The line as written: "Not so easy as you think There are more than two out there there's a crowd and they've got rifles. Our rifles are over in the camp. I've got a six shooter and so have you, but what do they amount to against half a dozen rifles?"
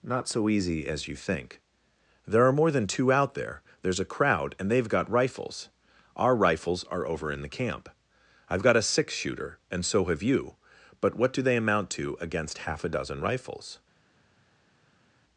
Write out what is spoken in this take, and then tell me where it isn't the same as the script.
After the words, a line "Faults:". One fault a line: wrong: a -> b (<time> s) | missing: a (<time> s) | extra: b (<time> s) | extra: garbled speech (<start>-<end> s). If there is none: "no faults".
"Not so easy as you think There are more than two out there there's a crowd and they've got rifles. Our rifles are over in the camp. I've got a six shooter and so have you, but what do they amount to against half a dozen rifles?"
Faults:
no faults